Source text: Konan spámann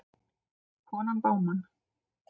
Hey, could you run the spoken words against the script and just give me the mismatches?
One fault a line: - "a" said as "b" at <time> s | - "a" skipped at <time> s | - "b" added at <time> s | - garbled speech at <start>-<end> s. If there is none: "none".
none